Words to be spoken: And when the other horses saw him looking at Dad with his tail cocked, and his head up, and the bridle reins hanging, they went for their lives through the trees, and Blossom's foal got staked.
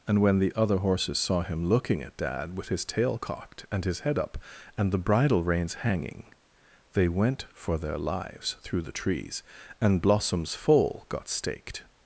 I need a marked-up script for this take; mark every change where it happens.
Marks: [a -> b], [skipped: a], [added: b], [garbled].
And when the other horses saw him looking at Dad with his tail cocked, and his head up, and the bridle reins hanging, they went for their lives through the trees, and Blossom's foal got staked.